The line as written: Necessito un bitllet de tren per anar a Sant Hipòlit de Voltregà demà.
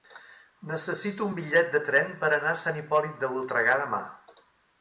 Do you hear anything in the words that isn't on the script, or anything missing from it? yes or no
no